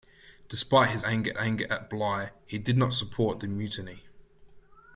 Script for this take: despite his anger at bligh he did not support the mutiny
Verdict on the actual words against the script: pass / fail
fail